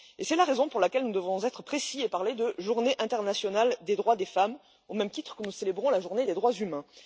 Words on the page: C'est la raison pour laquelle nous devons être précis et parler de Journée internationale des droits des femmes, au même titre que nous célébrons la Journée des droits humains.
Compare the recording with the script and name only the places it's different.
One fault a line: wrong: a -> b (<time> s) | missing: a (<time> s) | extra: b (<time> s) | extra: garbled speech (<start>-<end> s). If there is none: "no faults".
no faults